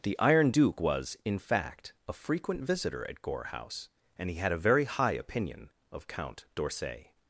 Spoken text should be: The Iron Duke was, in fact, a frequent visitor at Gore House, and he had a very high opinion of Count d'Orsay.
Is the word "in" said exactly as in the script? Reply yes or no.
yes